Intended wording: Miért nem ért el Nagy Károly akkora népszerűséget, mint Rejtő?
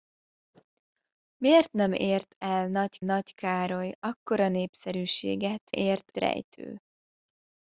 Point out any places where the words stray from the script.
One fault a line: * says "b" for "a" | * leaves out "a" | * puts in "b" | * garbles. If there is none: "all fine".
* puts in "Nagy"
* says "ért" for "mint"